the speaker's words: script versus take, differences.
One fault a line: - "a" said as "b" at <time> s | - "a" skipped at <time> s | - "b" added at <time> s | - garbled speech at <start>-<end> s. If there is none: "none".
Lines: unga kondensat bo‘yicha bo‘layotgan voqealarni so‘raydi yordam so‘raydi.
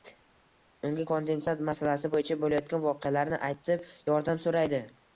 - "masalasi" added at 1.7 s
- "so‘raydi" said as "aytib" at 3.5 s